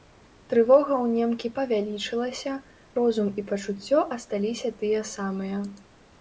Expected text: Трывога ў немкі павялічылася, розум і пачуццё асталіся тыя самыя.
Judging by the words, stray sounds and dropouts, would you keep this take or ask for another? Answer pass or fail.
pass